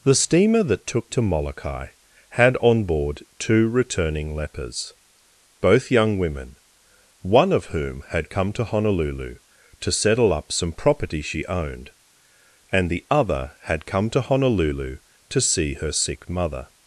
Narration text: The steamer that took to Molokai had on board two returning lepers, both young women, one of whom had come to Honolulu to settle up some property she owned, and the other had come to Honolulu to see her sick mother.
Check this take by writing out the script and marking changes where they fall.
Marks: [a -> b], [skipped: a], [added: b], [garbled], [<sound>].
The steamer that took to Molokai had on board two returning lepers, both young women, one of whom had come to Honolulu to settle up some property she owned, and the other had come to Honolulu to see her sick mother.